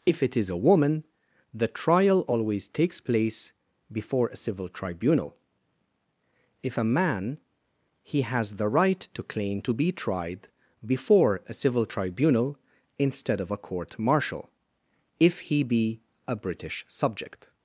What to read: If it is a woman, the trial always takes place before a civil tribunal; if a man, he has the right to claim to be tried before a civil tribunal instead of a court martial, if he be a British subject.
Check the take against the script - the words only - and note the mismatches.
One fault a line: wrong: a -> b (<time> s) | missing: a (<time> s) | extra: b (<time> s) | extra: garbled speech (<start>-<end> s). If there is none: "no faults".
no faults